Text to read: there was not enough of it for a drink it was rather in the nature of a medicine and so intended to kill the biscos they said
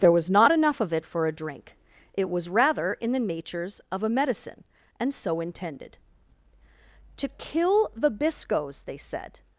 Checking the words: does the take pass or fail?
fail